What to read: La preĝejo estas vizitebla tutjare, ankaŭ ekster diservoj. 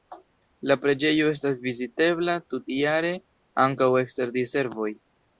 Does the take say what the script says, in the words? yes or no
yes